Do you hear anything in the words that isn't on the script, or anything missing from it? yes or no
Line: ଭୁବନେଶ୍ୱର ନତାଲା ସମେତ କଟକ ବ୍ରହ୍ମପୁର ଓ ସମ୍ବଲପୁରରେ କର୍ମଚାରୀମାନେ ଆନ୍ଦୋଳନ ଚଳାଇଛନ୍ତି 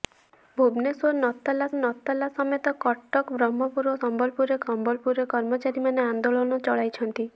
yes